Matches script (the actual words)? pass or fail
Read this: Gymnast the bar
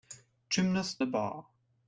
pass